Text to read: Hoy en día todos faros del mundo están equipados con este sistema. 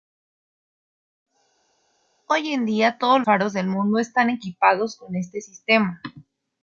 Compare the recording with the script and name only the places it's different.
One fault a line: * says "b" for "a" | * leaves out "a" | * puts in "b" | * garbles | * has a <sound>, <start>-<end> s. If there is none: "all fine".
all fine